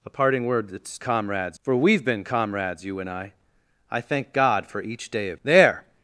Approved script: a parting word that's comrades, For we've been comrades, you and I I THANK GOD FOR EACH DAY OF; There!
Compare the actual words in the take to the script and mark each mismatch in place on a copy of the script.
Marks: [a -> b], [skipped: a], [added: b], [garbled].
a parting word that's comrades, For we've been comrades, you and I I THANK GOD FOR EACH DAY OF; There!